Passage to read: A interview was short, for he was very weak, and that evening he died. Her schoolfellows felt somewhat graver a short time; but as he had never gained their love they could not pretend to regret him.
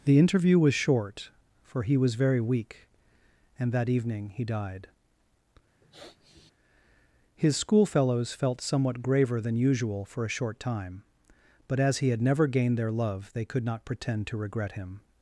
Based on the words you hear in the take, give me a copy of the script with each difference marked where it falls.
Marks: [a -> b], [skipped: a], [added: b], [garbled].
[A -> The] interview was short, for he was very weak, and that evening he died. [Her -> His] schoolfellows felt somewhat graver [added: than usual for] a short time; but as he had never gained their love they could not pretend to regret him.